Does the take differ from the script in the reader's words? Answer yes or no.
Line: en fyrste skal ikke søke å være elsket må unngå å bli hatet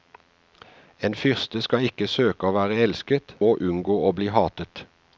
no